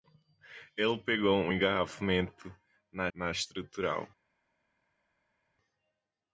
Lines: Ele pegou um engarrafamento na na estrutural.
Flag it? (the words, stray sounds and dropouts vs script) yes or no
no